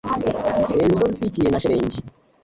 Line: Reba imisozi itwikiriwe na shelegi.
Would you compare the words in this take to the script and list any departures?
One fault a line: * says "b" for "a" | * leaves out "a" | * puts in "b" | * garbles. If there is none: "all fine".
all fine